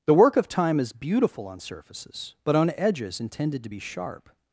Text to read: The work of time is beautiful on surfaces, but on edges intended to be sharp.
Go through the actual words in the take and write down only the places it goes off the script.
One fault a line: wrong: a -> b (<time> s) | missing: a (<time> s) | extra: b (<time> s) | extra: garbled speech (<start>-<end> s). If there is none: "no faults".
no faults